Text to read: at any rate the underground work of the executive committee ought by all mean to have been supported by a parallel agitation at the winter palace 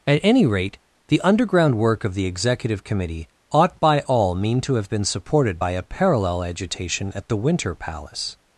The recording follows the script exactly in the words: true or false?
true